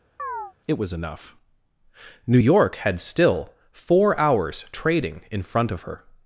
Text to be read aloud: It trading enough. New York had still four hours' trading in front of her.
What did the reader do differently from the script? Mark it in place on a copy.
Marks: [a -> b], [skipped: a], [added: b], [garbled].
It [trading -> was] enough. New York had still four hours' trading in front of her.